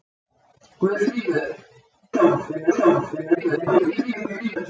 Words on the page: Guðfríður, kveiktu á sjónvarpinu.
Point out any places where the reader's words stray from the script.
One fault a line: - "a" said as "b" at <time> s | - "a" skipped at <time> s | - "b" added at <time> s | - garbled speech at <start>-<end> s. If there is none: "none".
- "kveiktu" said as "sjónvarpinu" at 2.1 s
- garbled speech at 3.3-4.6 s